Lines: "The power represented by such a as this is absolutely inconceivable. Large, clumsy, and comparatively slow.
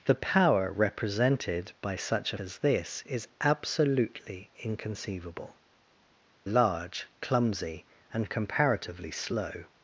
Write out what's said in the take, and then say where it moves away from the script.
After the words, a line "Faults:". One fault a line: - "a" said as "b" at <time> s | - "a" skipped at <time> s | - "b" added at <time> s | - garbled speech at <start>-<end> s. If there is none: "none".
"The power represented by such a as this is absolutely inconceivable. Large, clumsy, and comparatively slow.
Faults:
none